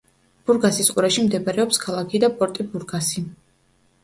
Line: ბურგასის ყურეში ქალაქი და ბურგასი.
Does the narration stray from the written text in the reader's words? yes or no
yes